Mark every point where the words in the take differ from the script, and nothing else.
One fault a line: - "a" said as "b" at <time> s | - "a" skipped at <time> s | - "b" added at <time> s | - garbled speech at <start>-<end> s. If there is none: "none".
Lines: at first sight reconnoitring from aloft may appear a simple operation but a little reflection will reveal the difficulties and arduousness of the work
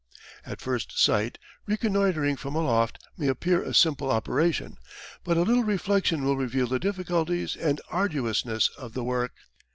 none